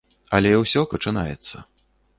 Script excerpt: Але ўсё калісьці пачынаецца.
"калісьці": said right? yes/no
no